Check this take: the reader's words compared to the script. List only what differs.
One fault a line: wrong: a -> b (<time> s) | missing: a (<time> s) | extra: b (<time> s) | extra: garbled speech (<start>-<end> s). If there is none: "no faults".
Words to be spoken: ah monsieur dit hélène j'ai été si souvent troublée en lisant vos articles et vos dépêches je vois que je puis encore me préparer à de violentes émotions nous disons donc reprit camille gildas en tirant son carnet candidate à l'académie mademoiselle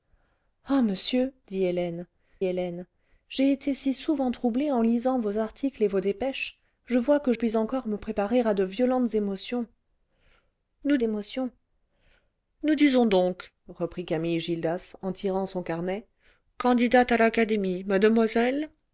extra: hélène (2.4 s)
missing: je (7.3 s)
extra: émotions nous (11.0 s)